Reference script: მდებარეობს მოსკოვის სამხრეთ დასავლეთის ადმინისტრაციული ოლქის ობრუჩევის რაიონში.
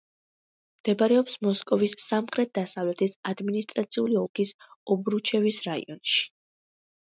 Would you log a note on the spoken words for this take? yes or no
no